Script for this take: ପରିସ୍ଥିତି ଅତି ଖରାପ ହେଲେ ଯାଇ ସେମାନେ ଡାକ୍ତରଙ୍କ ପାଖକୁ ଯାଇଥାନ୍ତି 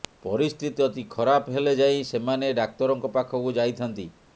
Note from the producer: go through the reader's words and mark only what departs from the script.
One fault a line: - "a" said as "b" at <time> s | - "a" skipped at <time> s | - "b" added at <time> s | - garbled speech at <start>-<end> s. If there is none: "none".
none